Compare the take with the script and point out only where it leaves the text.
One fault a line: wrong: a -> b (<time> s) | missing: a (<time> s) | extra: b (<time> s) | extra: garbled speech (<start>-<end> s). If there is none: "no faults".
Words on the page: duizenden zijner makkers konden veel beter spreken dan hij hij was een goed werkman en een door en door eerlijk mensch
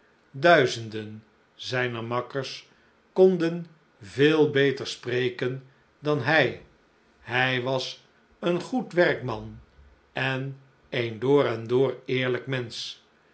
no faults